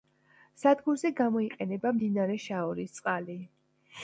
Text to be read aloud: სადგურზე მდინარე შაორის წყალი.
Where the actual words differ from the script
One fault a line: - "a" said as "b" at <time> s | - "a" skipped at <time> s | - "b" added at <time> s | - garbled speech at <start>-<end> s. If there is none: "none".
- "გამოიყენება" added at 1.2 s